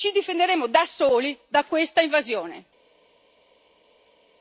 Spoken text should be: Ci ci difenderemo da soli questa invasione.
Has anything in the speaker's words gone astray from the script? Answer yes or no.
yes